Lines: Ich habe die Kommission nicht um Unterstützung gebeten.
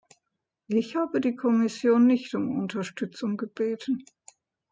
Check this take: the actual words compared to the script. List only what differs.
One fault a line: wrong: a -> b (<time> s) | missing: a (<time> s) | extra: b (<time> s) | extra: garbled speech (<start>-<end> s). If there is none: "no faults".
no faults